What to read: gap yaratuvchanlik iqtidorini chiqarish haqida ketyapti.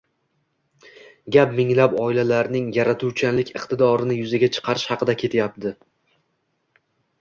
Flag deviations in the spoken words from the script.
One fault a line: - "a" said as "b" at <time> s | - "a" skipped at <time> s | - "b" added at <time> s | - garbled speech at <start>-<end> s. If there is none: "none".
- "minglab oilalarning" added at 1.6 s
- "yuzaga" added at 4.2 s